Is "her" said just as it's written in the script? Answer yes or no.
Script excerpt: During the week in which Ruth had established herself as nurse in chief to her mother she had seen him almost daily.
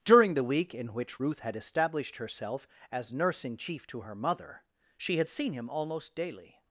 yes